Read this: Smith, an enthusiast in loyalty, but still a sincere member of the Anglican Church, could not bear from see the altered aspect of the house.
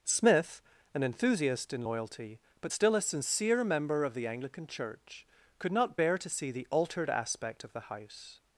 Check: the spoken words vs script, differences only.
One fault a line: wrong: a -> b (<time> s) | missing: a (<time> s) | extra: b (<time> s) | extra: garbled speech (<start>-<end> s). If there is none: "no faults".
wrong: from -> to (6.2 s)